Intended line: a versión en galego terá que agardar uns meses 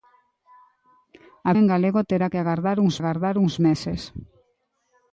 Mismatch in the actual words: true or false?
true